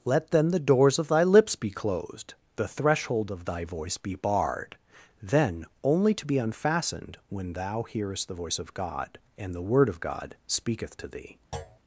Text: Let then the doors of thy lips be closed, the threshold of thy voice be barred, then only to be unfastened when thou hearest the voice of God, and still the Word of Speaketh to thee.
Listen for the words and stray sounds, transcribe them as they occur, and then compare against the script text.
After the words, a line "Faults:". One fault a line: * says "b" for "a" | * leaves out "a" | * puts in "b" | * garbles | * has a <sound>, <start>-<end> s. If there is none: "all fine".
Let then the doors of thy lips be closed, the threshold of thy voice be barred, then only to be unfastened when thou hearest the voice of God, and the Word of God speaketh to thee.
Faults:
* leaves out "still"
* puts in "God"
* has a thud, 11.5-11.8 s